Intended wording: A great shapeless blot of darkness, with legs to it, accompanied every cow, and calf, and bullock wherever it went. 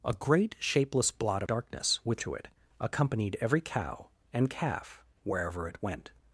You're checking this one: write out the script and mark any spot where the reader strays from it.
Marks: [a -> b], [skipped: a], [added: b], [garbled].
A great shapeless blot [skipped: of] darkness, with [skipped: legs] to it, accompanied every cow, and calf, [skipped: and bullock] wherever it went.